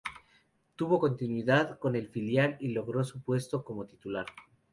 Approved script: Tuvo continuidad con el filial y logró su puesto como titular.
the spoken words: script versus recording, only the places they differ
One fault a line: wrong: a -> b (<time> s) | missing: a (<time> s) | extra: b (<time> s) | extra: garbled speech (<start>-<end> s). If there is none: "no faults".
no faults